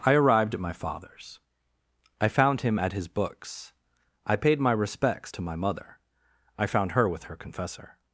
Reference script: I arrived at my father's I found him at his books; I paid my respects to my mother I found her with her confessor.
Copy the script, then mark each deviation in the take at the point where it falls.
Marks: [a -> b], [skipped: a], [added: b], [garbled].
I arrived at my father's I found him at his books; I paid my respects to my mother I found her with her confessor.